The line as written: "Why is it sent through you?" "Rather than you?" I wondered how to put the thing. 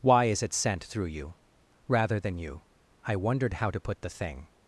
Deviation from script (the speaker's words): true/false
false